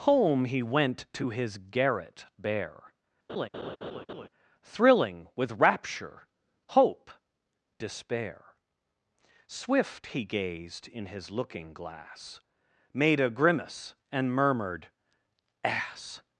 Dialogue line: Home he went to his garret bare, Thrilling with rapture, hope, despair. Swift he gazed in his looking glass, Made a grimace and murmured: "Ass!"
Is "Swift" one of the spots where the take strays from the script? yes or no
no